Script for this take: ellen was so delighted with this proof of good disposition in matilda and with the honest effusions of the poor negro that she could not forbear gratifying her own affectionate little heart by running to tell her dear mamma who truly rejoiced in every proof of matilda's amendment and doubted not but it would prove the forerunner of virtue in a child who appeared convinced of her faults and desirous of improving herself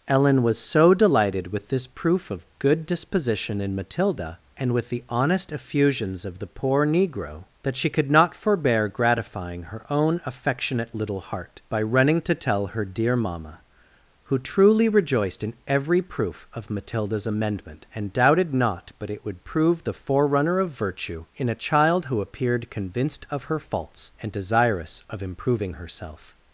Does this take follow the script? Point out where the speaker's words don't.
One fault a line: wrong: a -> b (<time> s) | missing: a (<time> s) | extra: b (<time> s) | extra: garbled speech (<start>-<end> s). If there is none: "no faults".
no faults